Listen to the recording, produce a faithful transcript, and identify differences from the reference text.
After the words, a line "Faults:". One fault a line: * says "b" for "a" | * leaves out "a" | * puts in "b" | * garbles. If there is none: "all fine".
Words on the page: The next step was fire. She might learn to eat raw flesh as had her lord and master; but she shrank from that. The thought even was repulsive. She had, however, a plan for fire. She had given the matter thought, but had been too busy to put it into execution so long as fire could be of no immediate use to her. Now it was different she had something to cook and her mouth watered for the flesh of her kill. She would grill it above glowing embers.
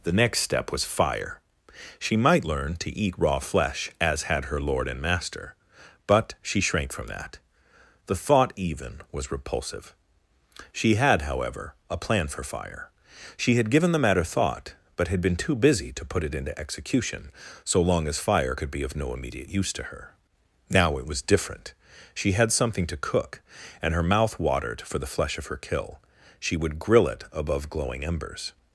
The next step was fire. She might learn to eat raw flesh as had her lord and master; but she shrank from that. The thought even was repulsive. She had, however, a plan for fire. She had given the matter thought, but had been too busy to put it into execution so long as fire could be of no immediate use to her. Now it was different she had something to cook and her mouth watered for the flesh of her kill. She would grill it above glowing embers.
Faults:
all fine